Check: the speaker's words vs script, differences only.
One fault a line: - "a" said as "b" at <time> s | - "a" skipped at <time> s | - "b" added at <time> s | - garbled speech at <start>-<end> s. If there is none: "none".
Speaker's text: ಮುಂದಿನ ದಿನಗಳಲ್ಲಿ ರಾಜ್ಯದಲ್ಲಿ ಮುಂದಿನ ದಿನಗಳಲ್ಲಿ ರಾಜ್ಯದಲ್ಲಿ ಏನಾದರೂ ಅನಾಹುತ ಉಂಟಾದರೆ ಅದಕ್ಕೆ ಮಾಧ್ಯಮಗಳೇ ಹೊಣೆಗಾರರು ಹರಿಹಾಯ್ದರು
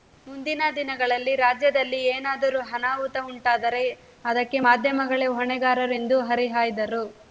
- "ಮುಂದಿನ ದಿನಗಳಲ್ಲಿ ರಾಜ್ಯದಲ್ಲಿ" skipped at 2.0 s
- "ಎಂದು" added at 5.9 s